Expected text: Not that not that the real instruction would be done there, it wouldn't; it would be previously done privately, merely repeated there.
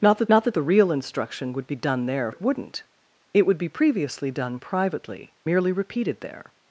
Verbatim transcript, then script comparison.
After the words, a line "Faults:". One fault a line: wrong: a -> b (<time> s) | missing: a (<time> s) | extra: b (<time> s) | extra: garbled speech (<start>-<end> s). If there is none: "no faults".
Not that not that the real instruction would be done there, it wouldn't; it would be previously done privately, merely repeated there.
Faults:
no faults